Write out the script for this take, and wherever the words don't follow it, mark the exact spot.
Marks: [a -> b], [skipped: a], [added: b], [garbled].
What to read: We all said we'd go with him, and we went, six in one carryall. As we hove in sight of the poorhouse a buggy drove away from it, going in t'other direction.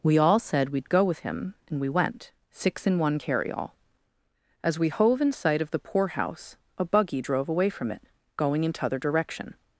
We all said we'd go with him, and we went, six in one carryall. As we hove in sight of the poorhouse a buggy drove away from it, going in t'other direction.